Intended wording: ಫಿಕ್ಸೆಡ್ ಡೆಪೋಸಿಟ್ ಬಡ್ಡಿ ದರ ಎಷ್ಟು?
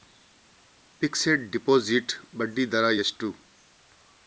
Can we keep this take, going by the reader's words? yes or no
yes